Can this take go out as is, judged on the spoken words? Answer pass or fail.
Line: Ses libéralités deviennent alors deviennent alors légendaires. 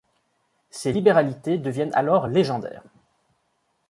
fail